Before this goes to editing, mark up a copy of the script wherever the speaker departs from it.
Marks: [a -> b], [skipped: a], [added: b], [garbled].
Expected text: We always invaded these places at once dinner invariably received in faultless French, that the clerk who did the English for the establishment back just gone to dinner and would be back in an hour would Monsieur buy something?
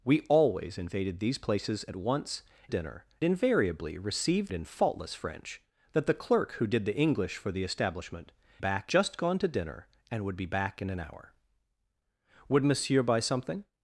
We always invaded these places at once dinner invariably received in faultless French, that the clerk who did the English for the establishment back just gone to dinner and would be back in an hour would Monsieur buy something?